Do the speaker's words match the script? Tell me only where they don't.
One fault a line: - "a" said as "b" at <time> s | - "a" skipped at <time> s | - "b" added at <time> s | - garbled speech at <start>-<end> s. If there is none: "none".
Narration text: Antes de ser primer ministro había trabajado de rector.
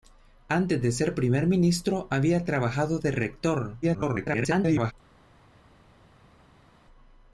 - garbled speech at 3.8-4.9 s